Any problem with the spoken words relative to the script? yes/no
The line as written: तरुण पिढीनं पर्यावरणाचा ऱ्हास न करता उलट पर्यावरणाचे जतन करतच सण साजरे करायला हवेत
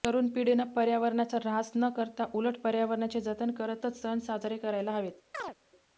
no